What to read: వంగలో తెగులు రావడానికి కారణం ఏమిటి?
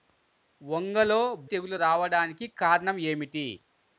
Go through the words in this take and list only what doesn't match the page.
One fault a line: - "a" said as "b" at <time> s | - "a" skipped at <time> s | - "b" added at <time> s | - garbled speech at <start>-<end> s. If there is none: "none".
none